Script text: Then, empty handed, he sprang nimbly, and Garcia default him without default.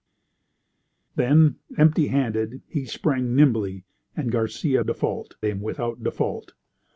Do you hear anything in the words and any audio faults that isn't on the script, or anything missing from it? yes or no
no